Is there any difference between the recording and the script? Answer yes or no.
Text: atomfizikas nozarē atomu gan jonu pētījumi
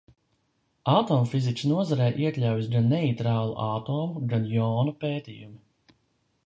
yes